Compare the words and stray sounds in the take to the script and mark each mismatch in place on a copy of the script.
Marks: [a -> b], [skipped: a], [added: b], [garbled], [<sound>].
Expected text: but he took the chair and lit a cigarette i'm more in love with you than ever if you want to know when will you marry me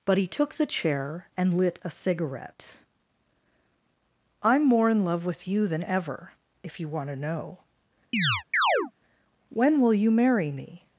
but he took the chair and lit a cigarette i'm more in love with you than ever if you want to know [chirp] when will you marry me